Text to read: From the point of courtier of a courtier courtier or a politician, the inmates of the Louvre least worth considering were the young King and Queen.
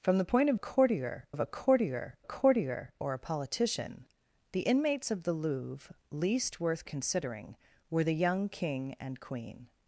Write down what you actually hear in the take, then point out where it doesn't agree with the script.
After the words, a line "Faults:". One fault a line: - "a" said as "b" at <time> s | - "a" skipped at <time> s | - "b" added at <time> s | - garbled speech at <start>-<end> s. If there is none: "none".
From the point of courtier of a courtier courtier or a politician, the inmates of the Louvre least worth considering were the young King and Queen.
Faults:
none